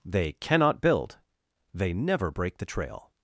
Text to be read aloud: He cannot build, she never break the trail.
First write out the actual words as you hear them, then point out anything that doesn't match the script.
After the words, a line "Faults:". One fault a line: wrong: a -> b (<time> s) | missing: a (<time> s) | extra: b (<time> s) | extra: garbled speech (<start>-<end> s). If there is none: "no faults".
They cannot build, they never break the trail.
Faults:
wrong: He -> They (0.0 s)
wrong: she -> they (1.8 s)